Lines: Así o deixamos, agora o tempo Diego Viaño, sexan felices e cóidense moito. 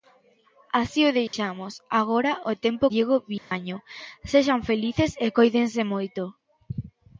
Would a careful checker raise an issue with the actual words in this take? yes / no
no